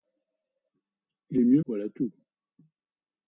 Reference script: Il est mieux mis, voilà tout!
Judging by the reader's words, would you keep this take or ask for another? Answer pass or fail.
fail